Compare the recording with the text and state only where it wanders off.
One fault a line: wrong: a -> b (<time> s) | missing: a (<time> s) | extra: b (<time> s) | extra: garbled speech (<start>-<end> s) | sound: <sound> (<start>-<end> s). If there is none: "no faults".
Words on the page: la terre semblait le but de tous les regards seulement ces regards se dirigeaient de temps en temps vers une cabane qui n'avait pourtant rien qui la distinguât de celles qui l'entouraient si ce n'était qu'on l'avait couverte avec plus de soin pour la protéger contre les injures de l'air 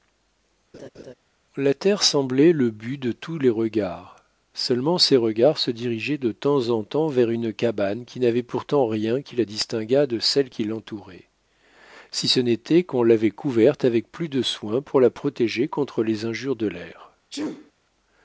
sound: laugh (0.7-1.1 s)
sound: sneeze (17.3-17.7 s)